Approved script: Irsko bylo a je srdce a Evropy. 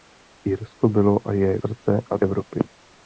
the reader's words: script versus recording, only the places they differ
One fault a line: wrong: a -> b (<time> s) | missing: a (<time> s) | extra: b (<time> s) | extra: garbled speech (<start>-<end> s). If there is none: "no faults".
no faults